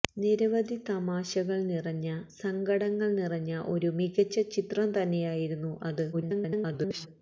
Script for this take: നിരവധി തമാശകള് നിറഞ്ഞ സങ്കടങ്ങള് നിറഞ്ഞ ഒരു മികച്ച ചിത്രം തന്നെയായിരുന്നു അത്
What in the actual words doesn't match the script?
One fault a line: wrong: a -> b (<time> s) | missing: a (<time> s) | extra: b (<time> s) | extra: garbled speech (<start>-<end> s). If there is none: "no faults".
extra: garbled speech (6.1-7.1 s)